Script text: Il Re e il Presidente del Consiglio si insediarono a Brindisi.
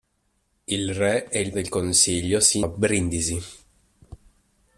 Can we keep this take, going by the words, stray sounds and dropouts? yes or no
no